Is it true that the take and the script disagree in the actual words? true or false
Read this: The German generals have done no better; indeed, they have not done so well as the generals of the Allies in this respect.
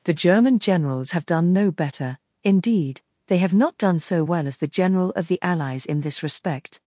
true